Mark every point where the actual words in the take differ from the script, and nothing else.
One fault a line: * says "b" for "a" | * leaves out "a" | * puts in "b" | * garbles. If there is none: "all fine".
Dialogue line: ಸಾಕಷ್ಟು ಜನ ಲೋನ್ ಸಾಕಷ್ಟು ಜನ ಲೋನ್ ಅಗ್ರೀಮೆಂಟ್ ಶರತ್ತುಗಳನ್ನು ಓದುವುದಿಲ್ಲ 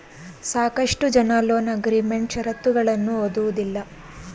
* leaves out "ಸಾಕಷ್ಟು ಜನ ಲೋನ್"